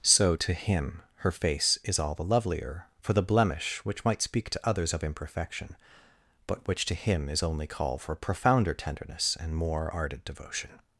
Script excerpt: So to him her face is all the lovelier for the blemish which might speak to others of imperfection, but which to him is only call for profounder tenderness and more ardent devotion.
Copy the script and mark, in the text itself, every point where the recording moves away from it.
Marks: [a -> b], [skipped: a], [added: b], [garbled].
So to him her face is all the lovelier for the blemish which might speak to others of imperfection, but which to him is only call for profounder tenderness and more ardent devotion.